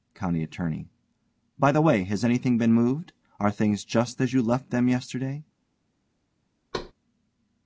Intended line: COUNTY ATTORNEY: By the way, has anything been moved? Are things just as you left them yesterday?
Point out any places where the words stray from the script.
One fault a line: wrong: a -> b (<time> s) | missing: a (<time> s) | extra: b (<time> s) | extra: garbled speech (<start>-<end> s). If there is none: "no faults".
no faults